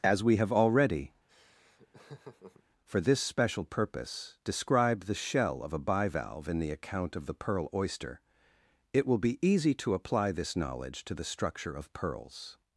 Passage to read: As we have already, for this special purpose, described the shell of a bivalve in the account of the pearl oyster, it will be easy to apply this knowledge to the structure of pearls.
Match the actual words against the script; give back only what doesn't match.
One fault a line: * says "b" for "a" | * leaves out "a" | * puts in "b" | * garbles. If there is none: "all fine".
all fine